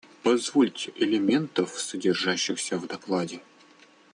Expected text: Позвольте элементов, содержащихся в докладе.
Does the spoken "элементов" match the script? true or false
true